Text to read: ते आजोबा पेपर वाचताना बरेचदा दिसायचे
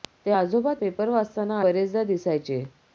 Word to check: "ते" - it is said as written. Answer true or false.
true